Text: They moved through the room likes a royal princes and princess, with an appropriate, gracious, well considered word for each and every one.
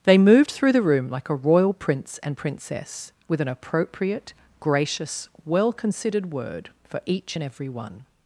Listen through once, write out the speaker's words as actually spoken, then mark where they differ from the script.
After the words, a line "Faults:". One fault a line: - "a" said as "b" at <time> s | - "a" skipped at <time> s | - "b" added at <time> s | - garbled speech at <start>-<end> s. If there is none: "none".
They moved through the room like a royal prince and princess, with an appropriate, gracious, well considered word for each and every one.
Faults:
- "likes" said as "like" at 1.1 s
- "princes" said as "prince" at 1.7 s